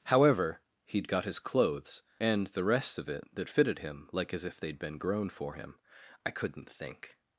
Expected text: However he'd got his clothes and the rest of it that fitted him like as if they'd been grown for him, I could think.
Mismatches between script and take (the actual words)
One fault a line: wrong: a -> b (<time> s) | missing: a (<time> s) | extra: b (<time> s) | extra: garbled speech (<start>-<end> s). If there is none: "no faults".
wrong: could -> couldn't (6.3 s)